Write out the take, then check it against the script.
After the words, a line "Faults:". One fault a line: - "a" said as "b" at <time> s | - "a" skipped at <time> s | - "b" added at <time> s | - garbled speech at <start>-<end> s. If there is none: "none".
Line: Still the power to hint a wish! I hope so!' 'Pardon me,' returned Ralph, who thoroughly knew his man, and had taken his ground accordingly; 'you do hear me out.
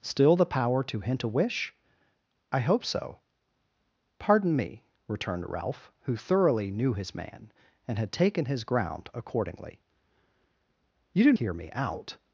Still the power to hint a wish! I hope so!' 'Pardon me,' returned Ralph, who thoroughly knew his man, and had taken his ground accordingly; 'you do hear me out.
Faults:
none